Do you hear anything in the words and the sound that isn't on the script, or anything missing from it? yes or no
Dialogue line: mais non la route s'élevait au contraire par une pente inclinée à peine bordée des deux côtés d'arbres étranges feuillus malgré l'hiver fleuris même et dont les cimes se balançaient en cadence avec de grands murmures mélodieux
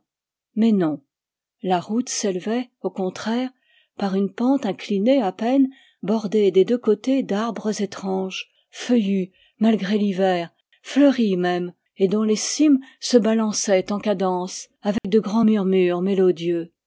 yes